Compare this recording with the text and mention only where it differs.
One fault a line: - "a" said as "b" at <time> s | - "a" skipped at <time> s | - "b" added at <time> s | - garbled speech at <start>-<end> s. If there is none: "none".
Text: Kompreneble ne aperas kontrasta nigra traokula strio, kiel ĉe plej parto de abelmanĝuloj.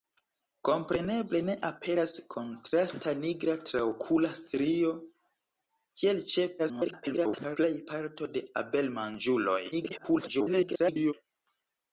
- garbled speech at 6.6-7.6 s
- garbled speech at 9.7-11.1 s